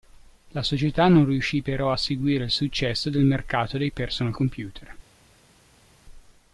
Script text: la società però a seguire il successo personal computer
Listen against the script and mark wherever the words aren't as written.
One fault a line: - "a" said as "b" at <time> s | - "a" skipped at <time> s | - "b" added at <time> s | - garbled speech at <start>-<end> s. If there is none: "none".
- "non riuscì" added at 1.1 s
- "del mercato dei" added at 3.1 s